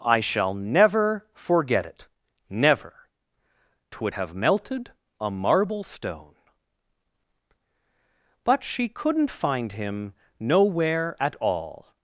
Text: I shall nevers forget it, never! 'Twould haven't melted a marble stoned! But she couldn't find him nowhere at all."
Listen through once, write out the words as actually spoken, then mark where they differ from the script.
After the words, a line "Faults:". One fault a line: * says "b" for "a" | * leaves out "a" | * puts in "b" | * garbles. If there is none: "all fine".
I shall never forget it, never! 'Twould have melted a marble stone! But she couldn't find him nowhere at all."
Faults:
* says "never" for "nevers"
* says "have" for "haven't"
* says "stone" for "stoned"